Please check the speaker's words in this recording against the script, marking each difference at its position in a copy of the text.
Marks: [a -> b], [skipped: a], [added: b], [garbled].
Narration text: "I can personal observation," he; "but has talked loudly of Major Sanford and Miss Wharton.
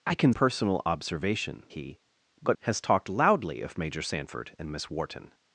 "I can personal observation," he; "but has talked loudly of Major Sanford and Miss Wharton.